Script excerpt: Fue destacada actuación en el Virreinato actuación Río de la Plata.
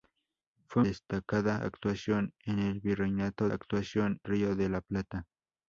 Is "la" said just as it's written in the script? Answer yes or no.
yes